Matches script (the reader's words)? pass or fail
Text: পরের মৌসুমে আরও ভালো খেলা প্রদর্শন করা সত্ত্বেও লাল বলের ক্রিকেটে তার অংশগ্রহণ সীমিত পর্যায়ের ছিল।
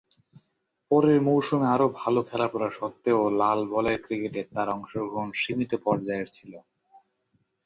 fail